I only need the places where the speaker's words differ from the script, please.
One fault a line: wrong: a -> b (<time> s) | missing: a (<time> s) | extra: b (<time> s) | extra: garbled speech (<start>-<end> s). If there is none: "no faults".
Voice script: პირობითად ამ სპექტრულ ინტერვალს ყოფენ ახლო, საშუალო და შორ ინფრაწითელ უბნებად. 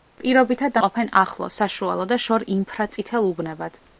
missing: ამ სპექტრულ ინტერვალს (0.8 s)